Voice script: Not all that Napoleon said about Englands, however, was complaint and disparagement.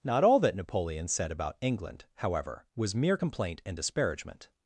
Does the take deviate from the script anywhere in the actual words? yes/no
yes